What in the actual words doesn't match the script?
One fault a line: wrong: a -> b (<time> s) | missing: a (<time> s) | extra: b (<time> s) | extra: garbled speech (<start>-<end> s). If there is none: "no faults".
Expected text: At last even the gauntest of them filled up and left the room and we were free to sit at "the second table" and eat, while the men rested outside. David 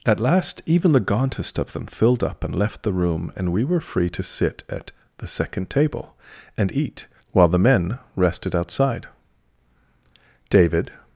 no faults